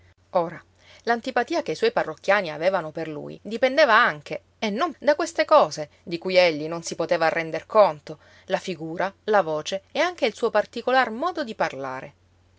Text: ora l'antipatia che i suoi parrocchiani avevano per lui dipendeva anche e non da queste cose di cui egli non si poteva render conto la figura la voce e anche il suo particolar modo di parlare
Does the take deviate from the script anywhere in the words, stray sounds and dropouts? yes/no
no